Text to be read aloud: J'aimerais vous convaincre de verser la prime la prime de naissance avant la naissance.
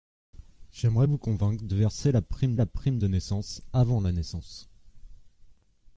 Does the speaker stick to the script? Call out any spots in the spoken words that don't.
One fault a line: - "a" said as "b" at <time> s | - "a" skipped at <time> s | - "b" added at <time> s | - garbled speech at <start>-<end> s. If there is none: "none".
none